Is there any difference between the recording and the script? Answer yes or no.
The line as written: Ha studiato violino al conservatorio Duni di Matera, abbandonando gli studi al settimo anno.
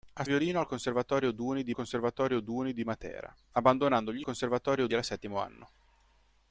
yes